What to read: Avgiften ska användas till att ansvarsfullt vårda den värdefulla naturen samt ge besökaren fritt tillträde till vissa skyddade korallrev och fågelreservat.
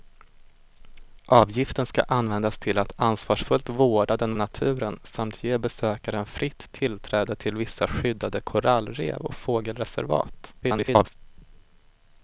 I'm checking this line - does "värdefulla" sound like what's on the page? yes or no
no